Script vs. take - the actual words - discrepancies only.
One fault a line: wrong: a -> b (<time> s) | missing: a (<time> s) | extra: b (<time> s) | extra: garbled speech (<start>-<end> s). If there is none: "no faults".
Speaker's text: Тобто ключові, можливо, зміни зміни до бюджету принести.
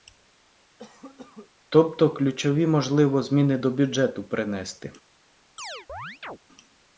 missing: зміни (3.6 s)